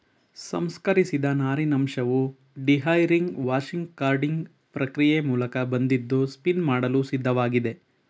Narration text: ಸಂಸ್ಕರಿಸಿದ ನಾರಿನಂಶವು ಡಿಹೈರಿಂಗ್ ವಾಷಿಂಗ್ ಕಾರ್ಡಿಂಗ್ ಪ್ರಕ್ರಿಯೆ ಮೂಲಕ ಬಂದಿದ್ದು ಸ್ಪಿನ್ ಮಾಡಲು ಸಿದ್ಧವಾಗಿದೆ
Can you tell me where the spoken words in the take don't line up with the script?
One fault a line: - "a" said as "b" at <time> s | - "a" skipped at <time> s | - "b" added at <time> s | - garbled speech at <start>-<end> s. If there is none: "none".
none